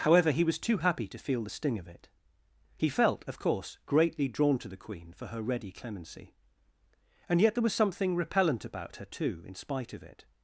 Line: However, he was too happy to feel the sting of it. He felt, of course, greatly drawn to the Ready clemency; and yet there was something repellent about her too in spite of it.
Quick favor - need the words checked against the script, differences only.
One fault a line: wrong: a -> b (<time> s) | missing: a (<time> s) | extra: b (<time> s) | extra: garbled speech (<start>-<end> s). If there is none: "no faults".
extra: Queen for her (4.8 s)